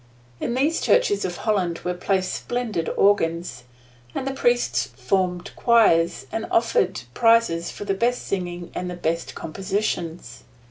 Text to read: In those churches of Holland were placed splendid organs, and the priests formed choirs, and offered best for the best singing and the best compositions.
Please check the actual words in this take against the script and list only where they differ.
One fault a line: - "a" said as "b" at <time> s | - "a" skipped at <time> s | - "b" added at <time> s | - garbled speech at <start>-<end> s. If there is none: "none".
- "those" said as "these" at 0.6 s
- "best" said as "prizes" at 7.1 s